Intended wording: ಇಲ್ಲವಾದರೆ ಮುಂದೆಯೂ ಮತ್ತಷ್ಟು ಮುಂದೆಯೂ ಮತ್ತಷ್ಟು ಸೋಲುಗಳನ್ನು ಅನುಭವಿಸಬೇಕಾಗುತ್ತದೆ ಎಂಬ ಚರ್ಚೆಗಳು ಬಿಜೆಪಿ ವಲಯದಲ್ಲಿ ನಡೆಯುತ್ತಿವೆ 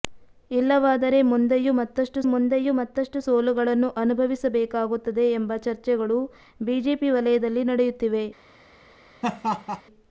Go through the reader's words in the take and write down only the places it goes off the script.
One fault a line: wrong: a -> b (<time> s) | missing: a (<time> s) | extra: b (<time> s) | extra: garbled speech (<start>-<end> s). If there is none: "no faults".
no faults